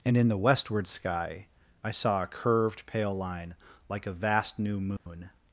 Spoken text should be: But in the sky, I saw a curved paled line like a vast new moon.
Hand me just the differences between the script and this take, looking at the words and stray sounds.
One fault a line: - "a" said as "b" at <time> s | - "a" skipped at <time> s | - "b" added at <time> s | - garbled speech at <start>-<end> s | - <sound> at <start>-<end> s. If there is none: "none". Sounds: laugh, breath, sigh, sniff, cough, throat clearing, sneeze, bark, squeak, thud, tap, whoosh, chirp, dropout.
- "But" said as "And" at 0.0 s
- "westward" added at 0.4 s
- "paled" said as "pale" at 2.9 s
- dropout at 5.0-5.1 s